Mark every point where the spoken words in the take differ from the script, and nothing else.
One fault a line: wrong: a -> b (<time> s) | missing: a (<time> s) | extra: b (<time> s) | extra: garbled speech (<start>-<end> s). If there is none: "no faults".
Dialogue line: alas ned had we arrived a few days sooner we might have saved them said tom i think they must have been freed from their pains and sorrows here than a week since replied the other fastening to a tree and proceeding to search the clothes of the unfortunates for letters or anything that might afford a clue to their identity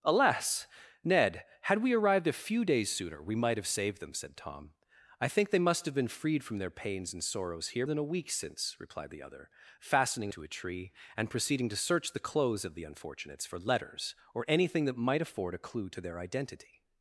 no faults